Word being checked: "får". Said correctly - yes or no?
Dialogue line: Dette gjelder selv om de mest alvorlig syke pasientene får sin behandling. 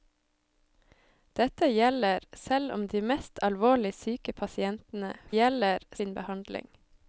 no